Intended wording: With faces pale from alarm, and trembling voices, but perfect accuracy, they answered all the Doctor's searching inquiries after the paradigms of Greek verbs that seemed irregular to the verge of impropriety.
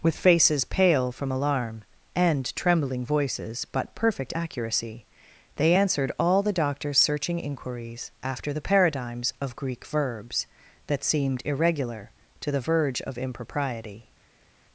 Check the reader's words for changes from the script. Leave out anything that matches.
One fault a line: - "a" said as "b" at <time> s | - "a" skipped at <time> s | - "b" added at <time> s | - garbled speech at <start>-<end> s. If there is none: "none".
none